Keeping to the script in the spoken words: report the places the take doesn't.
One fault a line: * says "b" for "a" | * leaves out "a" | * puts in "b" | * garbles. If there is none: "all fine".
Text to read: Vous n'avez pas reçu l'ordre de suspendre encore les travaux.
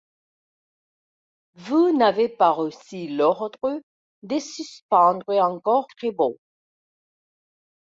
* leaves out "les"